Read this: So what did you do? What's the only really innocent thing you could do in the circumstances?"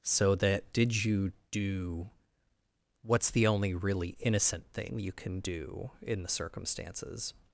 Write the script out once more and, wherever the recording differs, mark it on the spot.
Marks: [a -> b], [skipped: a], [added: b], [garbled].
So [what -> that] did you do? What's the only really innocent thing you [could -> can] do in the circumstances?"